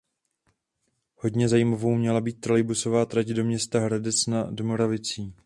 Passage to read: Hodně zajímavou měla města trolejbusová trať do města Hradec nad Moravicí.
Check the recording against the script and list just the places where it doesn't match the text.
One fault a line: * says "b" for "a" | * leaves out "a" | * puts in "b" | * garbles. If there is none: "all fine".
* says "být" for "města"